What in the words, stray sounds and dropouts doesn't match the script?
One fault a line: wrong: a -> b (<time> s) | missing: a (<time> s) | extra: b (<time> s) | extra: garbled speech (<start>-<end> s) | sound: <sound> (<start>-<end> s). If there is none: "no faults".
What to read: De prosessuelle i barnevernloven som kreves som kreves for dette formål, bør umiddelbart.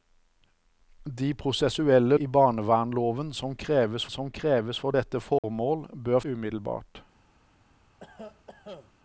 sound: dropout (5.4-5.4 s)
sound: cough (8.0-8.9 s)